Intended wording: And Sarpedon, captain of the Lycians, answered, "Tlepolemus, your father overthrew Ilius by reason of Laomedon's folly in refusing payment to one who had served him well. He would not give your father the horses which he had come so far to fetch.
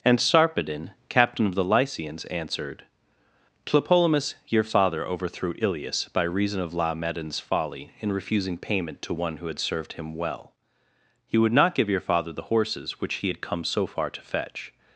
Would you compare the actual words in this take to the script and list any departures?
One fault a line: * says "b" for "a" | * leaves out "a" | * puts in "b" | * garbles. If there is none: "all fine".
all fine